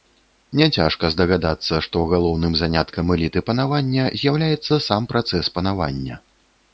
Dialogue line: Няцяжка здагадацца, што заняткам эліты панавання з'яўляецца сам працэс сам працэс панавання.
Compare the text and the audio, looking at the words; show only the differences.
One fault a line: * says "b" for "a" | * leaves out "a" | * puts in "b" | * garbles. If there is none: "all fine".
* puts in "галоўным"
* leaves out "сам працэс"